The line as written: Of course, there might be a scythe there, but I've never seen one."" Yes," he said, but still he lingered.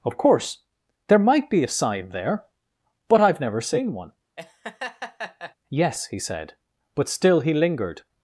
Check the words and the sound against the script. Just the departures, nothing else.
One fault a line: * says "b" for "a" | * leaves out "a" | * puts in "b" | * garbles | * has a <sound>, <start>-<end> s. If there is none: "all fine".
* says "sign" for "scythe"
* has a laugh, 4.4-5.5 s